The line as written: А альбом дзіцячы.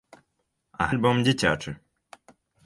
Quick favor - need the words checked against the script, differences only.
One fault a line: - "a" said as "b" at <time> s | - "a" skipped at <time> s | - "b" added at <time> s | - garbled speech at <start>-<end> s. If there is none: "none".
none